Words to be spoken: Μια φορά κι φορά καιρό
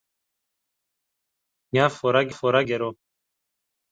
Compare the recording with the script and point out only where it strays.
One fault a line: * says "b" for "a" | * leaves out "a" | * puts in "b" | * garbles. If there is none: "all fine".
all fine